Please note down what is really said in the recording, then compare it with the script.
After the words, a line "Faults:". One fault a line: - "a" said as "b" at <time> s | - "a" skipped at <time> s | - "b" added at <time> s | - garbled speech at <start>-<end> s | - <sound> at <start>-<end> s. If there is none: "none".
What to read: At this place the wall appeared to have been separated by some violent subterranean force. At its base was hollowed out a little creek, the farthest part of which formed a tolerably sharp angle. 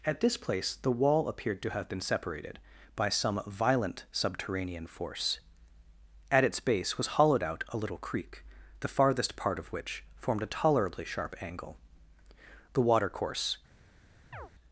At this place the wall appeared to have been separated by some violent subterranean force. At its base was hollowed out a little creek, the farthest part of which formed a tolerably sharp angle. The watercourse
Faults:
- "The watercourse" added at 12.7 s
- chirp at 14.3-14.5 s